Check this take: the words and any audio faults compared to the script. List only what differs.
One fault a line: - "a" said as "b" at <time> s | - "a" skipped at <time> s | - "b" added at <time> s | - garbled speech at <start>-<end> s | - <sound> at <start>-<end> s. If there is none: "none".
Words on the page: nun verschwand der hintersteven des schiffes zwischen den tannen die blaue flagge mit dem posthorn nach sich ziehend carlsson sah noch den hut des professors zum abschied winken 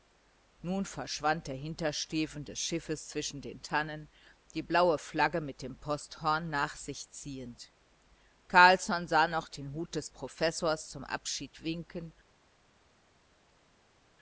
none